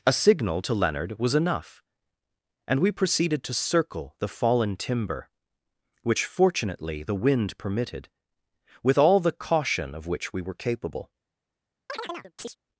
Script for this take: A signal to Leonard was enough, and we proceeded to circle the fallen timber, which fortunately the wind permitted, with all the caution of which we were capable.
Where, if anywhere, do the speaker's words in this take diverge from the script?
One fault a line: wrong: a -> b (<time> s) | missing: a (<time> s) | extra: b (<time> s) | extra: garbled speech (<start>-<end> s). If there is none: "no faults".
no faults